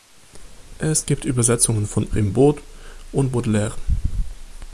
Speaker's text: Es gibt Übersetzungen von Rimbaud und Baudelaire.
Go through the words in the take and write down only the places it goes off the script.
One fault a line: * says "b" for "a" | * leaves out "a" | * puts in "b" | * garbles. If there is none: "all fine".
all fine